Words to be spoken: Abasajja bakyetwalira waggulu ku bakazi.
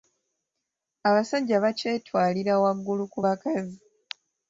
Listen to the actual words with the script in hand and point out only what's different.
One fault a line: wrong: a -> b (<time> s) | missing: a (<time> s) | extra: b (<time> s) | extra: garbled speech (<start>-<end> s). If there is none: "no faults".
no faults